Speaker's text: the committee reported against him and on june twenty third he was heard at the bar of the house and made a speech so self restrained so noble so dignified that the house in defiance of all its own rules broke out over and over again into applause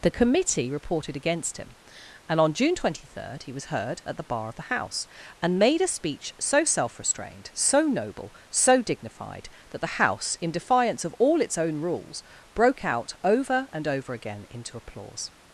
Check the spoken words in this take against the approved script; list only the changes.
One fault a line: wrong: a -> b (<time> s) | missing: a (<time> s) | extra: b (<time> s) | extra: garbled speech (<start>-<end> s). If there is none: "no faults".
no faults